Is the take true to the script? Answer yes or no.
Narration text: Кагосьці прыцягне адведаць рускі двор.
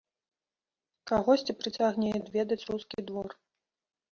yes